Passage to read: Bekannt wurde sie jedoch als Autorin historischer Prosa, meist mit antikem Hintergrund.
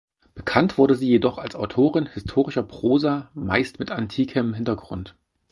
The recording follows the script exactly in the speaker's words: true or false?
true